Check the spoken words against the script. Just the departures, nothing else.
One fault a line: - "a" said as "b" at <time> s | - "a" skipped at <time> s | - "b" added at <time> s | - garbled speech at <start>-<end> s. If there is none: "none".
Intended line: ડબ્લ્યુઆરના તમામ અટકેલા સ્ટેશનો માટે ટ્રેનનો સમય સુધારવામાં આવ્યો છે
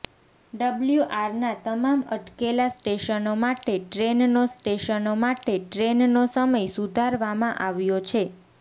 - "સ્ટેશનો માટે ટ્રેનનો" added at 4.5 s